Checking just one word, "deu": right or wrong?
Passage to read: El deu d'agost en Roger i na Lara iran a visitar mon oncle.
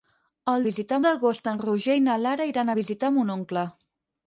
wrong